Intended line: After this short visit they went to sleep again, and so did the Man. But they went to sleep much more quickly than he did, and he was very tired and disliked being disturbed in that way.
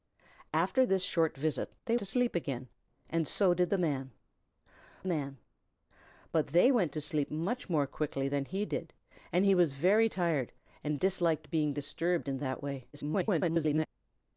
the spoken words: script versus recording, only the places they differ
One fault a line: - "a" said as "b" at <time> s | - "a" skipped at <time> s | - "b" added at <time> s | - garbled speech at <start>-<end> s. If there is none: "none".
- "went" skipped at 1.9 s
- "Man" added at 5.0 s
- garbled speech at 12.9-13.9 s